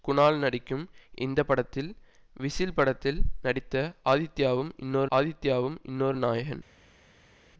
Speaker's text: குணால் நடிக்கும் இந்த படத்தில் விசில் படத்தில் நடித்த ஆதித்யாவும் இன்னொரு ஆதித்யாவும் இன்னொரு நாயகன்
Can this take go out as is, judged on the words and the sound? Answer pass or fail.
pass